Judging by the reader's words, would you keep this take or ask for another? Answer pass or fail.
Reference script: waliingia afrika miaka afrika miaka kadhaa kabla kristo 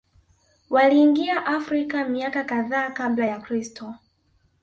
fail